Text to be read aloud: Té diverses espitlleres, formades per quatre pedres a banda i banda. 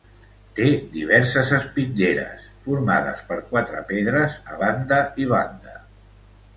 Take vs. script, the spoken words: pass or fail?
pass